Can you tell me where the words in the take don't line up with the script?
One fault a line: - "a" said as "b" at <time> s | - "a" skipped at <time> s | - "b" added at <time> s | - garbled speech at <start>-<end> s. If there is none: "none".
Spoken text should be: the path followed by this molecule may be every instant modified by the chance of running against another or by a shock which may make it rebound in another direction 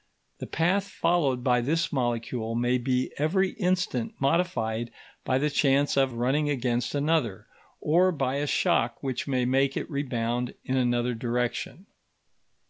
none